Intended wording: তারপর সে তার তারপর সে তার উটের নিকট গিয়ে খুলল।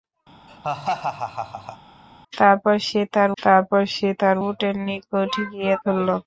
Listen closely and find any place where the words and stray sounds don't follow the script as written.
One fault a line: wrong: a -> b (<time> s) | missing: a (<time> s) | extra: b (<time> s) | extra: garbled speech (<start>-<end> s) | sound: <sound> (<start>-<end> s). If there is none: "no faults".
sound: laugh (0.5-1.8 s)